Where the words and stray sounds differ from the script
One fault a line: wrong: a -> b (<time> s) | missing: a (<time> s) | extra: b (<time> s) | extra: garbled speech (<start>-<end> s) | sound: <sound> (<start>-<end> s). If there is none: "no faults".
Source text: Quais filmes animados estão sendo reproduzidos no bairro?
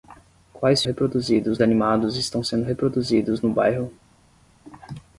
wrong: filmes -> reproduzidos (0.8 s)